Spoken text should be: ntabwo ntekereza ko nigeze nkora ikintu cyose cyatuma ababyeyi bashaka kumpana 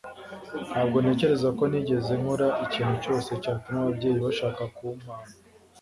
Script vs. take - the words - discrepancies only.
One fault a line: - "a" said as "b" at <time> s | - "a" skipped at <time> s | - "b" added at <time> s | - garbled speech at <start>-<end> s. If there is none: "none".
none